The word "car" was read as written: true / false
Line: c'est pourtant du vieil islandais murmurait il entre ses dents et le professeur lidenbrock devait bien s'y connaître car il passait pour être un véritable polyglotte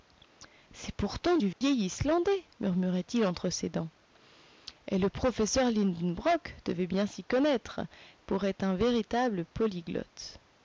false